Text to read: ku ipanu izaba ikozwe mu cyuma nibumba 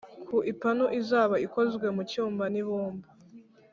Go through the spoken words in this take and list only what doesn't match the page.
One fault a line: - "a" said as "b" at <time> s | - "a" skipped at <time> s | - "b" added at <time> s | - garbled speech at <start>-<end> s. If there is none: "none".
none